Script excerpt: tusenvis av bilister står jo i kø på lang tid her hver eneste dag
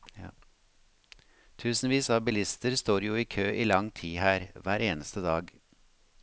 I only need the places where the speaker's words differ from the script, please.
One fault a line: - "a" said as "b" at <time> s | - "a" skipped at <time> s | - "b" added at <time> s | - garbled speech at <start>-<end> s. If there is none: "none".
- "på" said as "i" at 3.5 s